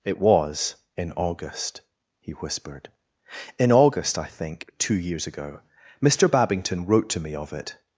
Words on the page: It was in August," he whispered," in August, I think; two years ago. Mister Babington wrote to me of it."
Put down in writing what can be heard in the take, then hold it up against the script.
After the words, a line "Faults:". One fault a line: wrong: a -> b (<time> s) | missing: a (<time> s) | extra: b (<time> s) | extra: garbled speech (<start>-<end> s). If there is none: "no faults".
It was in August," he whispered," in August, I think; two years ago. Mister Babington wrote to me of it."
Faults:
no faults